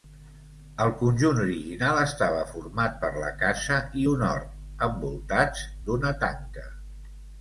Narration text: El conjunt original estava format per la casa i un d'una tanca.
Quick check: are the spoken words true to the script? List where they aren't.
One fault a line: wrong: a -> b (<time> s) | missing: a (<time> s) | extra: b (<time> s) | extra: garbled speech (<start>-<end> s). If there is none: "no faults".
extra: hort envoltats (4.3 s)